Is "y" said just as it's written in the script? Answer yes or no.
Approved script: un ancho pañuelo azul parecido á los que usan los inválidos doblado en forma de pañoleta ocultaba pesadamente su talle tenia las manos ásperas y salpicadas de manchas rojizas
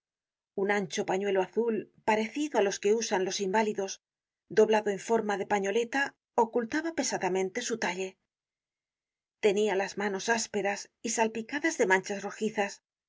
yes